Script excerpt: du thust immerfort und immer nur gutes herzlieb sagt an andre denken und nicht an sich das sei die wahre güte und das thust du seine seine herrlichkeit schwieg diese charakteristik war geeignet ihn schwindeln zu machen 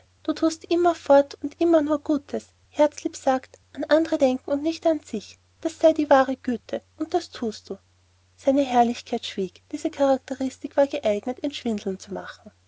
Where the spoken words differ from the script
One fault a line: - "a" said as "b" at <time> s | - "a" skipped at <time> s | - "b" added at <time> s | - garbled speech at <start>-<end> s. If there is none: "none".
- "seine" skipped at 8.6 s